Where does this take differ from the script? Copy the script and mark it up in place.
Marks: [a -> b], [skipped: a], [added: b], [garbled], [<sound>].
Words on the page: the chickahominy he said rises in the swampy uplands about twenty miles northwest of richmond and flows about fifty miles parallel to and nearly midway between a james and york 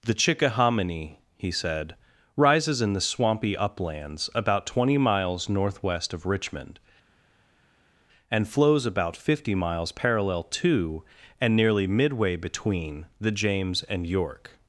the chickahominy he said rises in the swampy uplands about twenty miles northwest of richmond and flows about fifty miles parallel to and nearly midway between [a -> the] james and york